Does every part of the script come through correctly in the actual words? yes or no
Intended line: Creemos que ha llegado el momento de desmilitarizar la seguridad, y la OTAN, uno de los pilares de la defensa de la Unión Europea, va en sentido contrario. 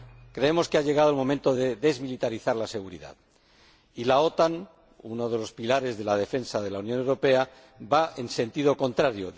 yes